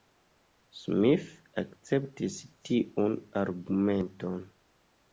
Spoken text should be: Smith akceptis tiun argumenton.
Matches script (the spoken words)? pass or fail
pass